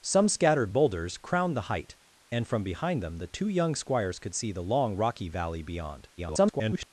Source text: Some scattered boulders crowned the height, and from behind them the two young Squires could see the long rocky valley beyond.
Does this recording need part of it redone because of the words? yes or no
yes